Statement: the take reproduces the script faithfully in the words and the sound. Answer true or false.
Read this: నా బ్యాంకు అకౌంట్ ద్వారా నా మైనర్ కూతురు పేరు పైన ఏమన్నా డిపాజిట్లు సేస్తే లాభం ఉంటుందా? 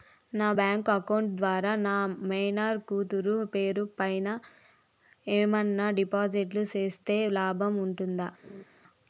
false